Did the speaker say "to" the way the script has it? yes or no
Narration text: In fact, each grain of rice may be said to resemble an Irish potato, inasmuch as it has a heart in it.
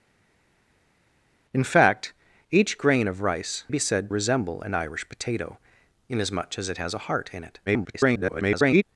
no